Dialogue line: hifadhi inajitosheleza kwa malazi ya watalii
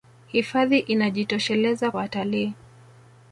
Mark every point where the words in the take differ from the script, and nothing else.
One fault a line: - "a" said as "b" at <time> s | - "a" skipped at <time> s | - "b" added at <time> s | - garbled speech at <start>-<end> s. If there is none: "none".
- "kwa malazi ya" skipped at 1.9 s